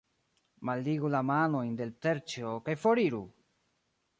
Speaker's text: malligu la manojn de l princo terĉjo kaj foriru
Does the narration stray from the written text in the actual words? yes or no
yes